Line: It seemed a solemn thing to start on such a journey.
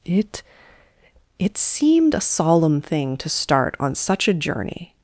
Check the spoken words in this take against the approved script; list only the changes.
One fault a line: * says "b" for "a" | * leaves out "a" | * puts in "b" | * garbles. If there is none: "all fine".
* puts in "it"